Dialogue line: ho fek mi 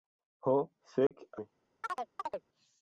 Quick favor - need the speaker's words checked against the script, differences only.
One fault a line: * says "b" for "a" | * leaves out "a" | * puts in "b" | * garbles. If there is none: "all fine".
all fine